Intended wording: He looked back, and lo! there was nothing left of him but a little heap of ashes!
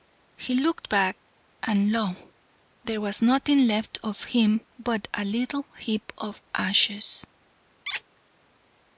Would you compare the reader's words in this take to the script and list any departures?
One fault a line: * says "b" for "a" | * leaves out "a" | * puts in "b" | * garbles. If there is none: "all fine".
all fine